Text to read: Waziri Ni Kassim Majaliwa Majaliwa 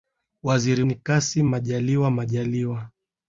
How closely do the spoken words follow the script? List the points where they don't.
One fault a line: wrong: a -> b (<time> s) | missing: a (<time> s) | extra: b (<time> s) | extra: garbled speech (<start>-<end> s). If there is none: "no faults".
no faults